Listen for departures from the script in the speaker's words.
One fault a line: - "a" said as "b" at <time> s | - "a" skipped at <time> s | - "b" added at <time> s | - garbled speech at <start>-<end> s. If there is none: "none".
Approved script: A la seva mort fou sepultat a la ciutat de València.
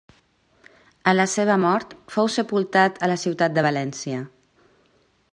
none